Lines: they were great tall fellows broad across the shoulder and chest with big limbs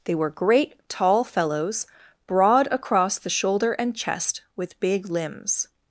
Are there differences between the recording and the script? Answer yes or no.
no